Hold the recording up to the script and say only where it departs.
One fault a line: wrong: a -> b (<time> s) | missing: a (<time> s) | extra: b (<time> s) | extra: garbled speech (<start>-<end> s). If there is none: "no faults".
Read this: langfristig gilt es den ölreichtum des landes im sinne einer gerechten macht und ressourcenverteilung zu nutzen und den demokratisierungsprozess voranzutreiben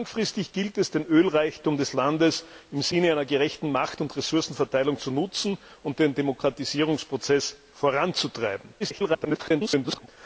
extra: garbled speech (8.8-10.1 s)